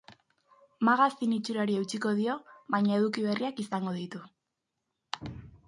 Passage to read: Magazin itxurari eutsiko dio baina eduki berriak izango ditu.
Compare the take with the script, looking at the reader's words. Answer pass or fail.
pass